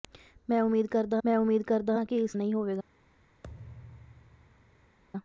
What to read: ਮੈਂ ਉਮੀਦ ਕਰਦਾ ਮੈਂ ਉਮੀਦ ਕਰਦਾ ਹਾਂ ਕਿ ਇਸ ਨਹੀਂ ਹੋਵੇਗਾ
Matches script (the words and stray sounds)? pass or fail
fail